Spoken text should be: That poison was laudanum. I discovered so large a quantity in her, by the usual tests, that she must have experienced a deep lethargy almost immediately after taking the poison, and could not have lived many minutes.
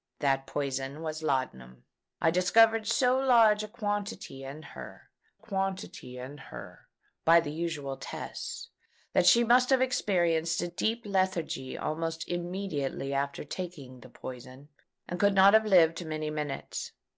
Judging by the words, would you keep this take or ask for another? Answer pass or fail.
fail